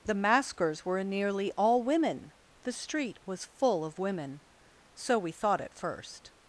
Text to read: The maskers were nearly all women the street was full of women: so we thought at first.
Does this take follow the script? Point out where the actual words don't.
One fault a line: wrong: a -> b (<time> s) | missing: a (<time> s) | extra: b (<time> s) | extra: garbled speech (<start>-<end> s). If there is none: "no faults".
no faults